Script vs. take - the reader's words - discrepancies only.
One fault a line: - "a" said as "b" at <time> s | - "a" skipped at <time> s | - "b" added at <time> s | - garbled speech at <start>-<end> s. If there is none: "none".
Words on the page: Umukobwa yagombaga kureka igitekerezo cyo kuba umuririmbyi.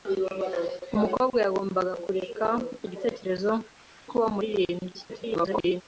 - "cyo" skipped at 3.5 s
- garbled speech at 5.1-5.8 s